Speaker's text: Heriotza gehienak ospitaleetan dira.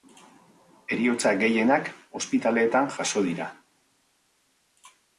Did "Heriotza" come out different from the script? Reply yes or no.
no